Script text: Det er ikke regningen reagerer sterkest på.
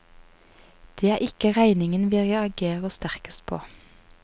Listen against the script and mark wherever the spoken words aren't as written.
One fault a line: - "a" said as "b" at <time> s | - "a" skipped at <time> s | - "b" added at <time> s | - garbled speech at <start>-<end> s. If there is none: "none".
- "vi" added at 2.1 s